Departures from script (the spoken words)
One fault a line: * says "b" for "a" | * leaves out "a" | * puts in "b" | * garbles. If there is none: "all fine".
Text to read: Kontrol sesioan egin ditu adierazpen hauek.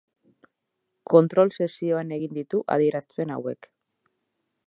all fine